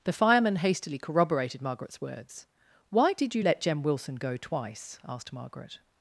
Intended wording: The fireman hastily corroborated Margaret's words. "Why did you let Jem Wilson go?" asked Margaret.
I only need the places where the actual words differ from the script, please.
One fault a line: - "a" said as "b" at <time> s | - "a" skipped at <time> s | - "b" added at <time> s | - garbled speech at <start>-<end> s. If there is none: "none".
- "twice" added at 4.4 s